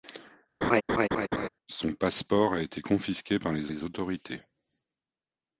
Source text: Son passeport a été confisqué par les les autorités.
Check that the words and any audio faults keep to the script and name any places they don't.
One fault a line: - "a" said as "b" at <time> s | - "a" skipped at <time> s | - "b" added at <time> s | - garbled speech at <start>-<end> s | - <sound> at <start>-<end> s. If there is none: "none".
- laugh at 0.6-1.5 s